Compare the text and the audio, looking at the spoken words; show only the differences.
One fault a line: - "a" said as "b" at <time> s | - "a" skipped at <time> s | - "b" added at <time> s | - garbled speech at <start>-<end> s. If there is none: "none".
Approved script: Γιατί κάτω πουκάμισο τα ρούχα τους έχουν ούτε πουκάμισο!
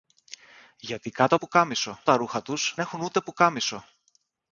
none